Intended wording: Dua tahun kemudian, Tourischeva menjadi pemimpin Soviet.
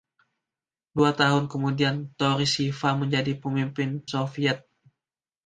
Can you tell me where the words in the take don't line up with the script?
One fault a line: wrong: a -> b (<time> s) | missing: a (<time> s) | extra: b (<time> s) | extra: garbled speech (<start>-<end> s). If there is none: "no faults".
no faults